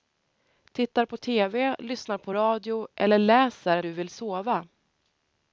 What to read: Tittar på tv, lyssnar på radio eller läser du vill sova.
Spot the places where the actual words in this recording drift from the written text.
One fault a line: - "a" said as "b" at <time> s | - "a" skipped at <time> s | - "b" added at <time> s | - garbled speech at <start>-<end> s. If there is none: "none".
none